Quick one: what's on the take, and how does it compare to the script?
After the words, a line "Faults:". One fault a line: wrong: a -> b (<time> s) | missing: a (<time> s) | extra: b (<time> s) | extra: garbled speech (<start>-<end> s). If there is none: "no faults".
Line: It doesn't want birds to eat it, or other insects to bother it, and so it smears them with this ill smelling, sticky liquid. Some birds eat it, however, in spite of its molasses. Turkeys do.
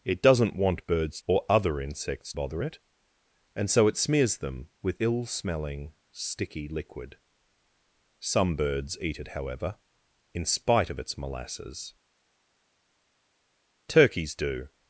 It doesn't want birds or other insects bother it, and so it smears them with ill smelling, sticky liquid. Some birds eat it, however, in spite of its molasses. Turkeys do.
Faults:
missing: to eat it (1.2 s)
missing: to (2.3 s)
missing: this (5.0 s)